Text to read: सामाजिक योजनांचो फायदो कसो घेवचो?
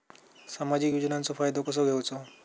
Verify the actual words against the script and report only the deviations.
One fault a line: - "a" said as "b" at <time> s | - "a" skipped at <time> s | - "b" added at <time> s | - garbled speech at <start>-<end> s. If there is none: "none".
none